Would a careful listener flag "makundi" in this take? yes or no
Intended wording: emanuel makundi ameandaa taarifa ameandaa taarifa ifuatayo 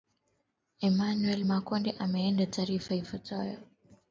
no